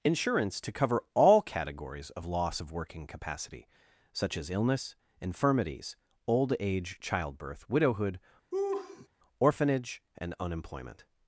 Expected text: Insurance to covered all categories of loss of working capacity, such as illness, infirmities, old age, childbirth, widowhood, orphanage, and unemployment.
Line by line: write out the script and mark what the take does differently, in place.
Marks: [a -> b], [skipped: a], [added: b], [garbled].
Insurance to [covered -> cover] all categories of loss of working capacity, such as illness, infirmities, old age, childbirth, widowhood, orphanage, and unemployment.